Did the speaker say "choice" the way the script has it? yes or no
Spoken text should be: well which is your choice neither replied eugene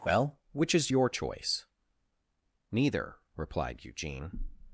yes